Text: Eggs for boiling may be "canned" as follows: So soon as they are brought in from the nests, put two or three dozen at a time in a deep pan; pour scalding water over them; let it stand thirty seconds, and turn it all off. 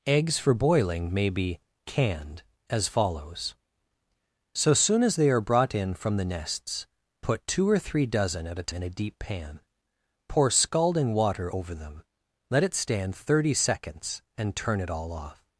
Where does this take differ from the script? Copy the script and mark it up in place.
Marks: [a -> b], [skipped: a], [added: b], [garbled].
Eggs for boiling may be "canned" as follows: So soon as they are brought in from the nests, put two or three dozen at a [skipped: time] in a deep pan; pour scalding water over them; let it stand thirty seconds, and turn it all off.